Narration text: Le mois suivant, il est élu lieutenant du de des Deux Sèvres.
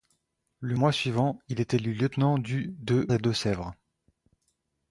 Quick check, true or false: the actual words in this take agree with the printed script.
true